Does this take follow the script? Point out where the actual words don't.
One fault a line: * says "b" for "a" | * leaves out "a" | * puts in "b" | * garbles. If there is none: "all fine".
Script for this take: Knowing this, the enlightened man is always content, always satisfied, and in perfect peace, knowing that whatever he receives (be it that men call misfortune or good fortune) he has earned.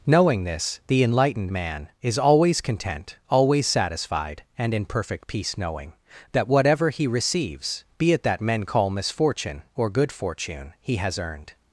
all fine